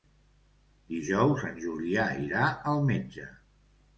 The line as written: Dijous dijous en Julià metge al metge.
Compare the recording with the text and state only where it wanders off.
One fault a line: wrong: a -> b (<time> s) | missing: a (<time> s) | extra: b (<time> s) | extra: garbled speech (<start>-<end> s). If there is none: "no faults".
missing: dijous (1.4 s)
wrong: metge -> irà (2.2 s)